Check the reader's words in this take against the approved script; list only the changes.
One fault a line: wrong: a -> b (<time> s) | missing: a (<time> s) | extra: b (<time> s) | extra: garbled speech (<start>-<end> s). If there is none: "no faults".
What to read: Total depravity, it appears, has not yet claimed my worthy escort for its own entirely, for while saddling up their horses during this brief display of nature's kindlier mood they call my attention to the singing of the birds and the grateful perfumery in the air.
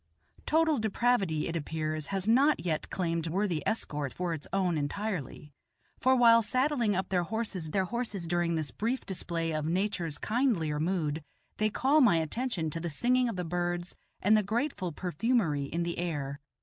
missing: my (3.3 s)
extra: their horses (7.7 s)